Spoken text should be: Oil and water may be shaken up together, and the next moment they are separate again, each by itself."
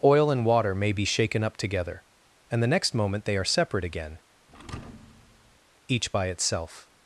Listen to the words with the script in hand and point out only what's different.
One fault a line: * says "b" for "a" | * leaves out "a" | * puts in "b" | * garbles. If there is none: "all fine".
all fine